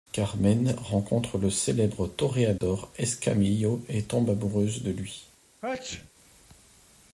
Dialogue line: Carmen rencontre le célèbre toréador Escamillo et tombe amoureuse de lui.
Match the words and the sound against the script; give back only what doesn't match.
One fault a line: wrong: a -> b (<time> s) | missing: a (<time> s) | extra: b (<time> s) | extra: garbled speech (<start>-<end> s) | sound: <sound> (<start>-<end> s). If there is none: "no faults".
sound: dropout (2.6-2.6 s)
sound: sneeze (5.6-6.1 s)